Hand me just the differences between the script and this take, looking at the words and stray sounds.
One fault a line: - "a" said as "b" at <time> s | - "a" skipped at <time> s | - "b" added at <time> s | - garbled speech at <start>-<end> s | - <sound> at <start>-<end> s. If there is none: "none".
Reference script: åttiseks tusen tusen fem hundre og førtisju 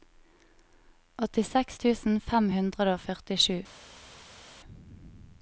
- "tusen" skipped at 2.2 s